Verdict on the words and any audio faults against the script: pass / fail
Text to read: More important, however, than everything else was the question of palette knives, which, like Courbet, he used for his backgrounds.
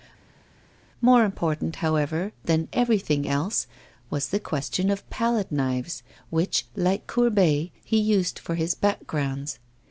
pass